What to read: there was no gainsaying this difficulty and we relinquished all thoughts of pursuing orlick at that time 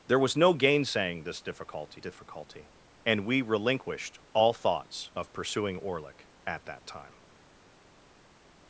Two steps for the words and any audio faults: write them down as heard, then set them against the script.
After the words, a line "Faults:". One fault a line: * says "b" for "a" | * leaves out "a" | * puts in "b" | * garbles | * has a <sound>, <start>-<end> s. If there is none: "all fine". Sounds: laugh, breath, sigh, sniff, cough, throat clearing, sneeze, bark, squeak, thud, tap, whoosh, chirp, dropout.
there was no gainsaying this difficulty difficulty and we relinquished all thoughts of pursuing orlick at that time
Faults:
* puts in "difficulty"